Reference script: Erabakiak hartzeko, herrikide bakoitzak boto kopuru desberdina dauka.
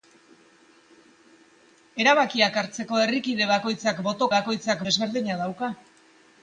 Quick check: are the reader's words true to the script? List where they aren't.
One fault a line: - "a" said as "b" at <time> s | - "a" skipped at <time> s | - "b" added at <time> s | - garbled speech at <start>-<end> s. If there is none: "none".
- "kopuru" said as "bakoitzak" at 4.4 s